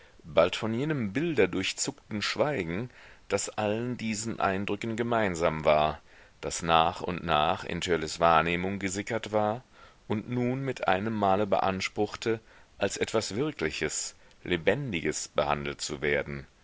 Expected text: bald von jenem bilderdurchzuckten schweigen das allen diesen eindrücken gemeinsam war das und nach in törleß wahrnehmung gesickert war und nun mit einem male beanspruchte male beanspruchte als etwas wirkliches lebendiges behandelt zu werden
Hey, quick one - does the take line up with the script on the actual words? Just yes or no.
no